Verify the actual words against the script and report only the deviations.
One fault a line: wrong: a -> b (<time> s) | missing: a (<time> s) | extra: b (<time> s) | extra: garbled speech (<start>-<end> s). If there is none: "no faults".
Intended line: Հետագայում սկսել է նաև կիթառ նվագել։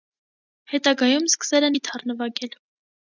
missing: նաև (1.7 s)